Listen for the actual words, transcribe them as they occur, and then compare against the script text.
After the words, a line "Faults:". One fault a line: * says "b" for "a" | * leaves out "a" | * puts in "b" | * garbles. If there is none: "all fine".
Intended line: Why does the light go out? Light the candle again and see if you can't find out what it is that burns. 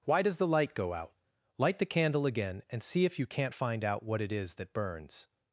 Why does the light go out? Light the candle again and see if you can't find out what it is that burns.
Faults:
all fine